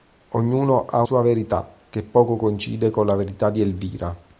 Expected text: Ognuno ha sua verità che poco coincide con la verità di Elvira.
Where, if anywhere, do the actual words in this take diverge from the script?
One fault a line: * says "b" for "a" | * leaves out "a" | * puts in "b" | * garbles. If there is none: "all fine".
all fine